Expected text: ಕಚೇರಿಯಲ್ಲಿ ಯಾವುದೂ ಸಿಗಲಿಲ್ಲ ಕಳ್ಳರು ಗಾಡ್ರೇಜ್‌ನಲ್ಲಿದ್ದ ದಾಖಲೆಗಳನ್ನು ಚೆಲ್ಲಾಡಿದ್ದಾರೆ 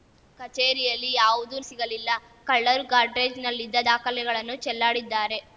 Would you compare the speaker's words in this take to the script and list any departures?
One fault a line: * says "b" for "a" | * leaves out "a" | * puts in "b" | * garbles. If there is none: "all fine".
all fine